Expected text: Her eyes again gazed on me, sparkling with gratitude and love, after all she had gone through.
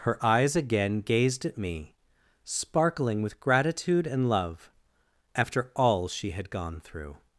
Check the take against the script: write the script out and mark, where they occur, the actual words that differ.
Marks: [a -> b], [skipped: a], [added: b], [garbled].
Her eyes again gazed [on -> at] me, sparkling with gratitude and love, after all she had gone through.